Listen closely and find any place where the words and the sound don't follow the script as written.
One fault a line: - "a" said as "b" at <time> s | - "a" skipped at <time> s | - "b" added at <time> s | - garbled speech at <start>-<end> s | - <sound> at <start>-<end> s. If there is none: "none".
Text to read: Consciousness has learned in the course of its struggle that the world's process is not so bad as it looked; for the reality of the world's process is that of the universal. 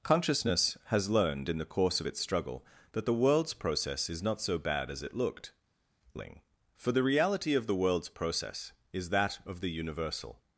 - "ling" added at 6.1 s